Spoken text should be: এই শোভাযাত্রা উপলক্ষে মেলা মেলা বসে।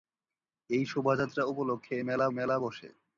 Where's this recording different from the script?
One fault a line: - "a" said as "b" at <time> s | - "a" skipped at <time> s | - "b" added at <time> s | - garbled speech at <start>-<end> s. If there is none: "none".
none